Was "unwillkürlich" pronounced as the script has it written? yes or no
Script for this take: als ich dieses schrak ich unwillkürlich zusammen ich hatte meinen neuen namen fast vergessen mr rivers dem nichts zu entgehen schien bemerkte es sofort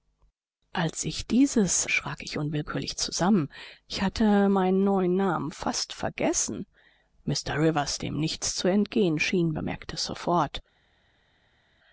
yes